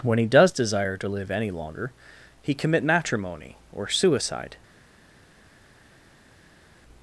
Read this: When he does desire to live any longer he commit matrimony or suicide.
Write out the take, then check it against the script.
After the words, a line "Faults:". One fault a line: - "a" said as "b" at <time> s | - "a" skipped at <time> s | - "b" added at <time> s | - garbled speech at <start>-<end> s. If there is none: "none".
When he does desire to live any longer he commit matrimony or suicide.
Faults:
none